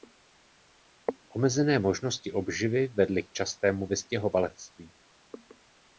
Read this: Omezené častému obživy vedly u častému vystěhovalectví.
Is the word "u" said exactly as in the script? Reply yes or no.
no